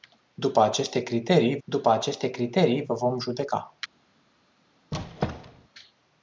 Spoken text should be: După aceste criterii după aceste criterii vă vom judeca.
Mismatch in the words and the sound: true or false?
true